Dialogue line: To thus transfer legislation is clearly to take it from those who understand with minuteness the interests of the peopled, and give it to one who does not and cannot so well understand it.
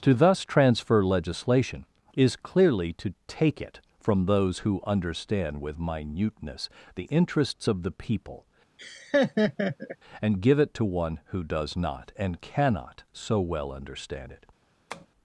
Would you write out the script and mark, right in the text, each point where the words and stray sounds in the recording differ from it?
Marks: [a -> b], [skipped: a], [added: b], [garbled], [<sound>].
To thus transfer legislation is clearly to take it from those who understand with minuteness the interests of the [peopled, -> people] [laugh] and give it to one who does not and cannot so well understand it. [tap]